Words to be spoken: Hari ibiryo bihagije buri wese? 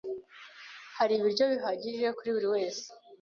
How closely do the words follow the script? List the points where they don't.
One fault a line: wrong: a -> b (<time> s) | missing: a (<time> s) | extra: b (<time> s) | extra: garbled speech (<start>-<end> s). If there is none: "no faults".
extra: kuri (2.2 s)